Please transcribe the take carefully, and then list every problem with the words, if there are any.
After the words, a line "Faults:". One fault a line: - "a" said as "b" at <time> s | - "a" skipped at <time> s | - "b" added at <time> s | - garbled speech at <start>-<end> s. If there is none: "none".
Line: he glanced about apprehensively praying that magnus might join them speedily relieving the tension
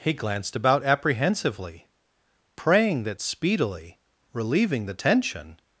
he glanced about apprehensively praying that speedily relieving the tension
Faults:
- "magnus might join them" skipped at 3.2 s